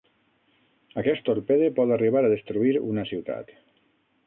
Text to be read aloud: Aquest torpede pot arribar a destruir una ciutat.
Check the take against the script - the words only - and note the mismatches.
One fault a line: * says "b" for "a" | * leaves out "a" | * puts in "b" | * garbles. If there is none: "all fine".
all fine